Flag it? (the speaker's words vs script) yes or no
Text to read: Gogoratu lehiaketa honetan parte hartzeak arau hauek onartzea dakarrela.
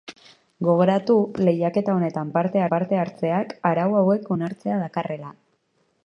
yes